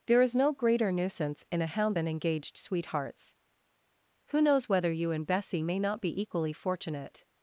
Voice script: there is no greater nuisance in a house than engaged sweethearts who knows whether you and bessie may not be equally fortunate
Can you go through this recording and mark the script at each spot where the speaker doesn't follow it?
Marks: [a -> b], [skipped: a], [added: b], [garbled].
there is no greater nuisance in a [house -> hound] than engaged sweethearts who knows whether you and bessie may not be equally fortunate